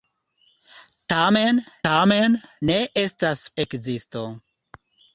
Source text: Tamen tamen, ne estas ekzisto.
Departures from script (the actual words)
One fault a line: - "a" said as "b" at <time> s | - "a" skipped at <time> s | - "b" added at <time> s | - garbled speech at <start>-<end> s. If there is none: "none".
none